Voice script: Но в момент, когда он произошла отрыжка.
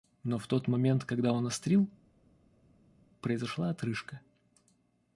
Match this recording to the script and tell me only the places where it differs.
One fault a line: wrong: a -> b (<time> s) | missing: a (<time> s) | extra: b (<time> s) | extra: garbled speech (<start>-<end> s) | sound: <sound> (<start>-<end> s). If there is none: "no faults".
extra: тот (0.5 s)
extra: острил (1.4 s)